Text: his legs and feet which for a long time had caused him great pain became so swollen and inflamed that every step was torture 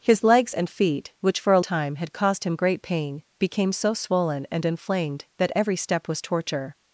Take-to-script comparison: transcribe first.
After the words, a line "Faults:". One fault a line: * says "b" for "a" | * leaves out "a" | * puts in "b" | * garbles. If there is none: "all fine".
his legs and feet which for a time had caused him great pain became so swollen and inflamed that every step was torture
Faults:
* leaves out "long"